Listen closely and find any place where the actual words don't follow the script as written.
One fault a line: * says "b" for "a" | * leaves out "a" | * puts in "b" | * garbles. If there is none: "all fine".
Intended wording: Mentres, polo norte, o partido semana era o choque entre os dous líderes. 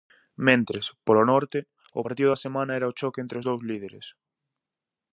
* puts in "da"